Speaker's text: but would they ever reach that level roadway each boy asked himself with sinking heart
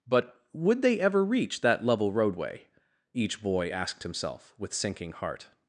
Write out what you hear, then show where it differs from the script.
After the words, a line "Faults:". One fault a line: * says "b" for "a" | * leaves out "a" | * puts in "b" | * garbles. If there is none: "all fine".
but would they ever reach that level roadway each boy asked himself with sinking heart
Faults:
all fine